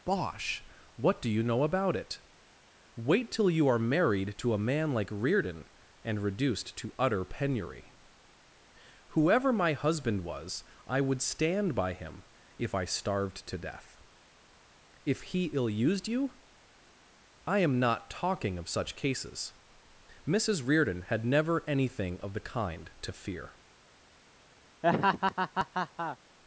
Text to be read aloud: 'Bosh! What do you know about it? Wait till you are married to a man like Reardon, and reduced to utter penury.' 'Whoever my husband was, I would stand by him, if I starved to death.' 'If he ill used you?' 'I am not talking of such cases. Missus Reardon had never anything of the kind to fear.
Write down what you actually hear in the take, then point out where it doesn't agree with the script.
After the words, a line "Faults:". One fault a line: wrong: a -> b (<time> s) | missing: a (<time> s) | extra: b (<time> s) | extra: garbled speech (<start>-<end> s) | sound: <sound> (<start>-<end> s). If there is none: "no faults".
'Bosh! What do you know about it? Wait till you are married to a man like Reardon, and reduced to utter penury.' 'Whoever my husband was, I would stand by him, if I starved to death.' 'If he ill used you?' 'I am not talking of such cases. Missus Reardon had never anything of the kind to fear.
Faults:
sound: laugh (24.8-26.2 s)